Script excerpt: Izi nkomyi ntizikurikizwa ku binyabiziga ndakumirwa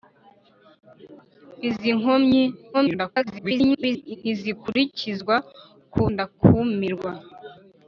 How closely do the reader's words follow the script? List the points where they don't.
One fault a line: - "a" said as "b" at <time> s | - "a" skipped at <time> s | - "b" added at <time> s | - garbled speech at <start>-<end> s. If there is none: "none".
- garbled speech at 2.7-4.2 s
- "binyabiziga" skipped at 6.0 s